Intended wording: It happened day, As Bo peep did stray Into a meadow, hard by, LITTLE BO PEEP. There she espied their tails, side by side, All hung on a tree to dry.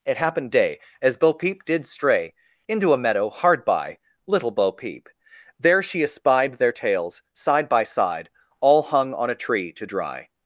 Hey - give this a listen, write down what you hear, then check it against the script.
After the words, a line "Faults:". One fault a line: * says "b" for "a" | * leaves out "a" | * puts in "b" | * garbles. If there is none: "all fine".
It happened day, As Bo peep did stray Into a meadow, hard by, LITTLE BO PEEP. There she espied their tails, side by side, All hung on a tree to dry.
Faults:
all fine